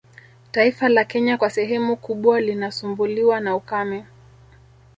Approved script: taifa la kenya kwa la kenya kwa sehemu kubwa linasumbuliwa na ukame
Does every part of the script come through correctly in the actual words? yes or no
no